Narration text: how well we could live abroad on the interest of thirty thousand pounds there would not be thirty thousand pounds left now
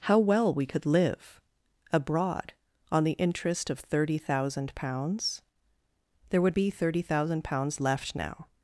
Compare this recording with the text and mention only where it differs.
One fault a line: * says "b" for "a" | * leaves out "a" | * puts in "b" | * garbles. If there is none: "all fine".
* leaves out "not"